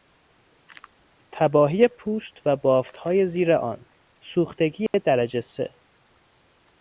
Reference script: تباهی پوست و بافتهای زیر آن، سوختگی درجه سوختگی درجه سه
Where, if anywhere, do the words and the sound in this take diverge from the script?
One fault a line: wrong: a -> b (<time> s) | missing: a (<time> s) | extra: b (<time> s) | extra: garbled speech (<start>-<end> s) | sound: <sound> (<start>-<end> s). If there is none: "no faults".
sound: dropout (4.9-4.9 s)
missing: سوختگی درجه (5.4 s)